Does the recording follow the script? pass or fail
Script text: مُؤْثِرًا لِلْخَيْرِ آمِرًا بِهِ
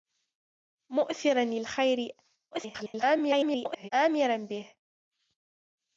fail